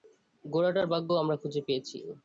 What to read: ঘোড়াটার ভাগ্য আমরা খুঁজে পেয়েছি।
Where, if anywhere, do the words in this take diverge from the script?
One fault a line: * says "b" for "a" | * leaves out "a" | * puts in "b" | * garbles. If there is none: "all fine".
all fine